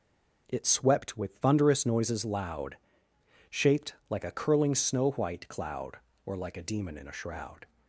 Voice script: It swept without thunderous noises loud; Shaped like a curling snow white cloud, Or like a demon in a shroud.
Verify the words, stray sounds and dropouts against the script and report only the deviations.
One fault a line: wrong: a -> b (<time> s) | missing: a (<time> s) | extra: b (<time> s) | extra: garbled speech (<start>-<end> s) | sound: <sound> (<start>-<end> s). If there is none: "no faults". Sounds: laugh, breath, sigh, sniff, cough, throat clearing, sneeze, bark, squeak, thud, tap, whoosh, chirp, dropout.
wrong: without -> with (1.2 s)